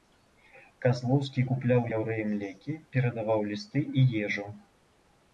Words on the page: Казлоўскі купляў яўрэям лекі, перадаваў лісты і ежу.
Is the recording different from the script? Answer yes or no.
no